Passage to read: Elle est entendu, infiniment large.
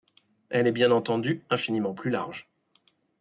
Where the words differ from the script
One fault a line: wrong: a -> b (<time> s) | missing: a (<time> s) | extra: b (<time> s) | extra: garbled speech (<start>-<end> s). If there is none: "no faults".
extra: bien (0.7 s)
extra: plus (1.9 s)